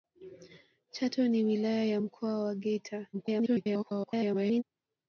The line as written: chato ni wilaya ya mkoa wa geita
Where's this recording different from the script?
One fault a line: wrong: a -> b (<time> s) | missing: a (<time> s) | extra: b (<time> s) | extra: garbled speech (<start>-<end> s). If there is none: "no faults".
extra: garbled speech (3.1-4.6 s)